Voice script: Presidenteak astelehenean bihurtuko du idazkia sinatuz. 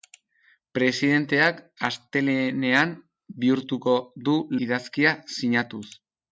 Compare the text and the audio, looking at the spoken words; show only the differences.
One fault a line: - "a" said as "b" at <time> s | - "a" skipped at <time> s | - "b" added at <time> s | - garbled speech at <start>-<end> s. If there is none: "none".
none